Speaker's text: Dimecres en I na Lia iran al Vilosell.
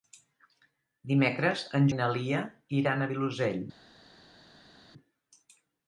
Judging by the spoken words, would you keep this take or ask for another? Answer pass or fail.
pass